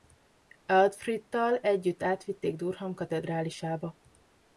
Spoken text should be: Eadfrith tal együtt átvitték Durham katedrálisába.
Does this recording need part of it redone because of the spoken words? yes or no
no